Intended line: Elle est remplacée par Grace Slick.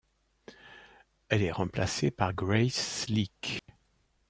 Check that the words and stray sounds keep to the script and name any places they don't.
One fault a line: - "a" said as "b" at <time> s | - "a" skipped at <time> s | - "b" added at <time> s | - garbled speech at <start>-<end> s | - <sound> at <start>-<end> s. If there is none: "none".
- dropout at 3.6-3.7 s